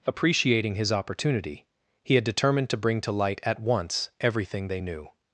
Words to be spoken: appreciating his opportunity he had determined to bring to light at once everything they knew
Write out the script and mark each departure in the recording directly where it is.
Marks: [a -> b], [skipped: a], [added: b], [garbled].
appreciating his opportunity he had determined to bring to light at once everything they knew